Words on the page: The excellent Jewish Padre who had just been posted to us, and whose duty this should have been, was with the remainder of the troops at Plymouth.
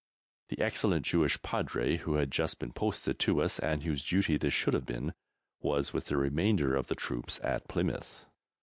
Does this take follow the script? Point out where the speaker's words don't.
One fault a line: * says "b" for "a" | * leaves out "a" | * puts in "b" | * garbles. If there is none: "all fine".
all fine